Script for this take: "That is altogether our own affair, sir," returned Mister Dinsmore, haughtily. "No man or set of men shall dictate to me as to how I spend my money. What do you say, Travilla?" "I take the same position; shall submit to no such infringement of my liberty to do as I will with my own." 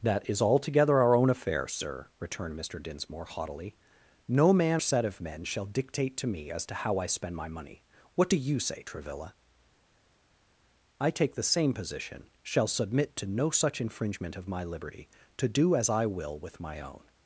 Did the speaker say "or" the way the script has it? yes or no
no